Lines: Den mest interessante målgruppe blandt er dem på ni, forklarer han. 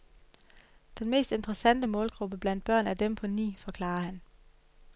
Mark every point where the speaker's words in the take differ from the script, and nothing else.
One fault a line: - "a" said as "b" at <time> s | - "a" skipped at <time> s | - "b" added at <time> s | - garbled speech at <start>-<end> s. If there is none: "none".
- "børn" added at 2.6 s